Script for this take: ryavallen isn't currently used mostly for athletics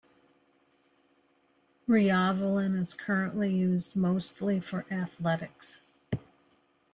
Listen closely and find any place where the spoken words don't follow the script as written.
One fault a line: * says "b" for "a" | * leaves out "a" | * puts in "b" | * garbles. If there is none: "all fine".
* says "is" for "isn't"